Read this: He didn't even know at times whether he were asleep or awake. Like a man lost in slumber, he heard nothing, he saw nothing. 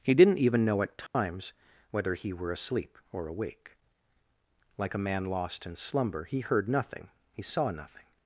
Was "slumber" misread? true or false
false